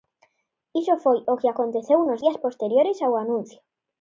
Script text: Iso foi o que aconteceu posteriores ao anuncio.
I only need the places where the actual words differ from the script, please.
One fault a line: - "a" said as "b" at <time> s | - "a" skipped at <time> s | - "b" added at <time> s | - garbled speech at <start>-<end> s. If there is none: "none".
- "nos días" added at 2.1 s